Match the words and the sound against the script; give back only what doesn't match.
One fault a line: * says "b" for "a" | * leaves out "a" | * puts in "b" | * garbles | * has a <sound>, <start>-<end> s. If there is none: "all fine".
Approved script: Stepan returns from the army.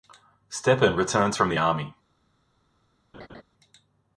* has a laugh, 3.1-3.4 s